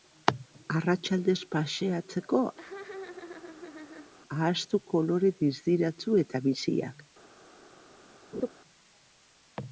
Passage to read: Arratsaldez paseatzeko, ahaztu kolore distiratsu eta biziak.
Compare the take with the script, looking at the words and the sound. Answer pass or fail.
fail